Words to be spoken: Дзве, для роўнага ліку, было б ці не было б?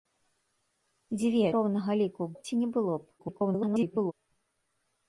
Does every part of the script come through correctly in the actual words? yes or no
no